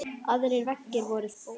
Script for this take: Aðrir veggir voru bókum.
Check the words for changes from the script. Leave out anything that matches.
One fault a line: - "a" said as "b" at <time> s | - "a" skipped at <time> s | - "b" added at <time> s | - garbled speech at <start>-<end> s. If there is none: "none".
none